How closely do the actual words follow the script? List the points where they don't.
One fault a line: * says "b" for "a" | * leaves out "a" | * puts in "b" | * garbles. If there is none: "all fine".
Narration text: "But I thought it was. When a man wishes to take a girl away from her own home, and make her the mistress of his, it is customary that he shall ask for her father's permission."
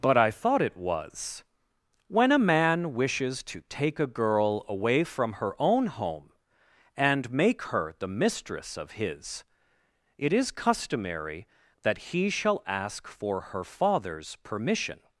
all fine